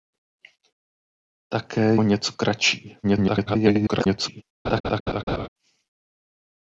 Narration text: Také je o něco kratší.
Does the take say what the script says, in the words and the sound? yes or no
no